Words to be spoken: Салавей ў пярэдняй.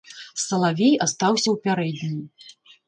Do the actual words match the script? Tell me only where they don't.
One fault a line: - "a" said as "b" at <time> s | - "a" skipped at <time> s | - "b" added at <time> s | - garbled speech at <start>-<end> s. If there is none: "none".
- "астаўся" added at 1.1 s